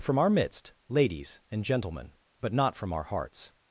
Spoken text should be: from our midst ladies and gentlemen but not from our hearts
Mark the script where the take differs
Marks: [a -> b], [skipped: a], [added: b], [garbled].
from our midst ladies and gentlemen but not from our hearts